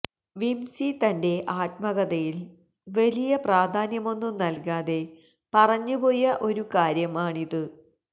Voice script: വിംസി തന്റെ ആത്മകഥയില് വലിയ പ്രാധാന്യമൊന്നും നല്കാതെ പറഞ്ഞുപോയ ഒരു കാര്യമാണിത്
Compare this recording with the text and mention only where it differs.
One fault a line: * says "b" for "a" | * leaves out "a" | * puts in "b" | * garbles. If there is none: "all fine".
all fine